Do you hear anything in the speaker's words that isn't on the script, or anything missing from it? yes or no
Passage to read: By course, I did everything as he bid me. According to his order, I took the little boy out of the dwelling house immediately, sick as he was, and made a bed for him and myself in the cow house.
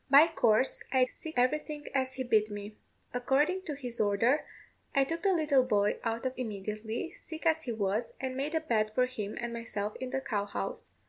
yes